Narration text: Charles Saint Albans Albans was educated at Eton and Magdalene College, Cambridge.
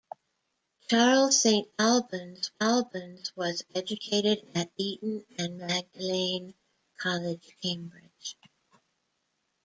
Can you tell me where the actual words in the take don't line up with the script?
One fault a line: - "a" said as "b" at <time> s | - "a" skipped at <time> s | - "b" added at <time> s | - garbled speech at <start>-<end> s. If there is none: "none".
none